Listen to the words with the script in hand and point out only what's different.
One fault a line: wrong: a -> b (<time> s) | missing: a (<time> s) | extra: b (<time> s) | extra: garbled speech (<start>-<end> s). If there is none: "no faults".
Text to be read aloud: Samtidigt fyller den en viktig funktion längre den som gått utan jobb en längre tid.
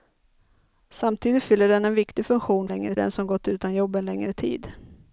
no faults